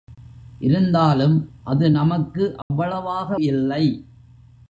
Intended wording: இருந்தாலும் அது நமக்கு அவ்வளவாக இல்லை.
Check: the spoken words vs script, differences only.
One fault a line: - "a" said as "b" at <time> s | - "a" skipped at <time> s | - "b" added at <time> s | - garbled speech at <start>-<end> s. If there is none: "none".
none